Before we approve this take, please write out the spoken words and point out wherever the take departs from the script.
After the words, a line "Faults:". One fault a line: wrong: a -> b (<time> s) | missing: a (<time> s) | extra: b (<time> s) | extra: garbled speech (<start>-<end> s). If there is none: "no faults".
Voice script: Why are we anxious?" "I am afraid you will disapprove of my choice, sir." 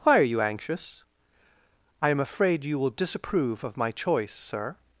Why are you anxious?" "I am afraid you will disapprove of my choice, sir."
Faults:
wrong: we -> you (0.2 s)